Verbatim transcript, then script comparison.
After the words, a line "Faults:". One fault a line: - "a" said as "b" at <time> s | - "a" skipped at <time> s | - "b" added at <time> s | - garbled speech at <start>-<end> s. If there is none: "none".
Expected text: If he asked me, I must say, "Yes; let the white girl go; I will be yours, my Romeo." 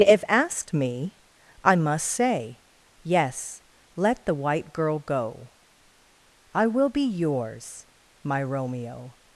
If asked me, I must say, "Yes; let the white girl go; I will be yours, my Romeo."
Faults:
- "he" skipped at 0.2 s